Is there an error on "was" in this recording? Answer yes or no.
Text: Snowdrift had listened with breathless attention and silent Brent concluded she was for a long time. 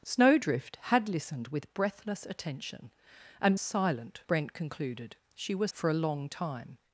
no